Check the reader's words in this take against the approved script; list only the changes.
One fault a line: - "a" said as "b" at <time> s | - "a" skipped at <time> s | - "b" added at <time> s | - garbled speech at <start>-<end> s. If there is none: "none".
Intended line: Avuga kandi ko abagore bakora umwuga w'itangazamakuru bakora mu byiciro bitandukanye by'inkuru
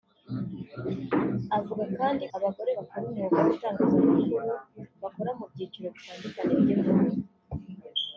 - "ko" skipped at 2.2 s